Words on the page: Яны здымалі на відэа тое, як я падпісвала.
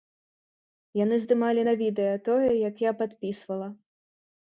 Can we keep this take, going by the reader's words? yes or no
yes